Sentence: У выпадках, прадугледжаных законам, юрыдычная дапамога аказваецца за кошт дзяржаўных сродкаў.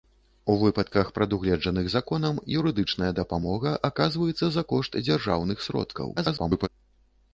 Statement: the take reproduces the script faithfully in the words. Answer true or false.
false